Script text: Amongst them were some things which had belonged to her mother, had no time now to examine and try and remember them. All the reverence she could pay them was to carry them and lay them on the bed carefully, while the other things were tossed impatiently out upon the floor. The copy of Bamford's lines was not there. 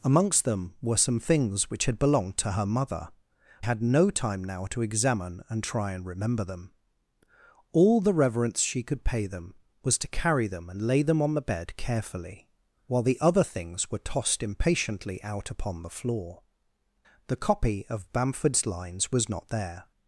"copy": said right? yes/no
yes